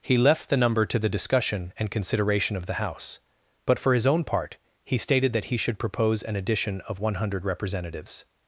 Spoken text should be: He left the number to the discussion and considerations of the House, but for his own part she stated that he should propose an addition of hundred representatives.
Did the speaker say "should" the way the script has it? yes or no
yes